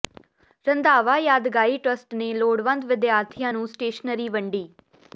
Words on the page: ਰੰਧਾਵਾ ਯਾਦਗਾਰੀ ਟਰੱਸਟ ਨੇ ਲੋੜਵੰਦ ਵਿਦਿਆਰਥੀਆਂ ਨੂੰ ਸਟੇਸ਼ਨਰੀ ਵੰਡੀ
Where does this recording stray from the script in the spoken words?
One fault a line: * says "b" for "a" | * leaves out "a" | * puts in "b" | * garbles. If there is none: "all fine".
all fine